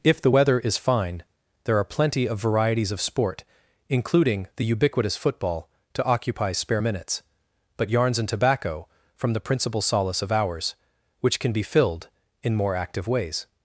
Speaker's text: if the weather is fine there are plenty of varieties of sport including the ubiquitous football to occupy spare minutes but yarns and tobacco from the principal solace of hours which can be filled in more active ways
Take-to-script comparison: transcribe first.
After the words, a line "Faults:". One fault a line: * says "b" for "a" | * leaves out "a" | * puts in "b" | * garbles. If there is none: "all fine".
if the weather is fine there are plenty of varieties of sport including the ubiquitous football to occupy spare minutes but yarns and tobacco from the principal solace of hours which can be filled in more active ways
Faults:
all fine